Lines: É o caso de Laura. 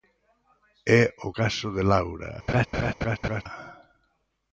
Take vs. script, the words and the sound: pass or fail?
fail